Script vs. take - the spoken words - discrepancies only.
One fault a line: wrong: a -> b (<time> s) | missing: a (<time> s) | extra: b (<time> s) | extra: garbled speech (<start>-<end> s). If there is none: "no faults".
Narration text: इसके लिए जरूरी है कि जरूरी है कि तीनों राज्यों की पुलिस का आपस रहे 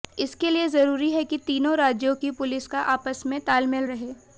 missing: जरूरी है कि (1.4 s)
extra: में तालमेल (3.3 s)